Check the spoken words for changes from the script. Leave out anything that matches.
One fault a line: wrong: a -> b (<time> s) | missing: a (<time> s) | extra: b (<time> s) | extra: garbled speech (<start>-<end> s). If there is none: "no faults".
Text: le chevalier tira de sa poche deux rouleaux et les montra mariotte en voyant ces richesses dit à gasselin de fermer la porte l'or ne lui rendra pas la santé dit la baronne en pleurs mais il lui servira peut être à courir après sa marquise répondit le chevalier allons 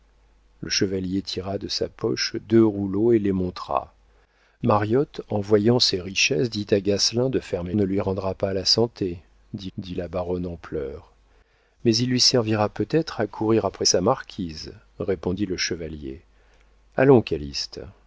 missing: la porte l'or (7.7 s)
extra: dit (9.8 s)